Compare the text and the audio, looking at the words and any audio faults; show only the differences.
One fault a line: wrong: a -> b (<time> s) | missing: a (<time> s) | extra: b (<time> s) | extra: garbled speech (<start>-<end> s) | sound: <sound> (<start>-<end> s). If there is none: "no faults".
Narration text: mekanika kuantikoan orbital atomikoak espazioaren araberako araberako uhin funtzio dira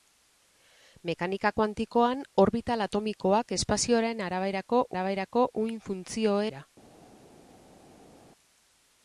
no faults